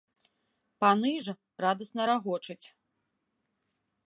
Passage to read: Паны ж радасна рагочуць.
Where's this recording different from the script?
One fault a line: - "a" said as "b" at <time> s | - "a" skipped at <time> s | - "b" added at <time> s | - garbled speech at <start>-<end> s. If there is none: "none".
none